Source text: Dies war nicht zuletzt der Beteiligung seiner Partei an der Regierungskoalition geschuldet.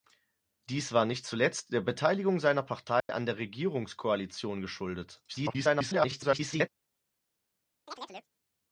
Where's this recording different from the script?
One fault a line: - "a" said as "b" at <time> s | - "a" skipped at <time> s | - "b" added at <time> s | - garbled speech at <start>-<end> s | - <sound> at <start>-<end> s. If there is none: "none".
- dropout at 3.0-3.1 s
- garbled speech at 5.3-6.7 s
- chirp at 7.9-8.3 s